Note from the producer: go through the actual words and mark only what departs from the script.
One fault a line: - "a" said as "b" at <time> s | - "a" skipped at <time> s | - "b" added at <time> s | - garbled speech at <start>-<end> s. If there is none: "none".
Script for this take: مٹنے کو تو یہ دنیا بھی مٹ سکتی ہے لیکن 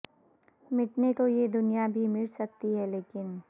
- "کو" skipped at 1.1 s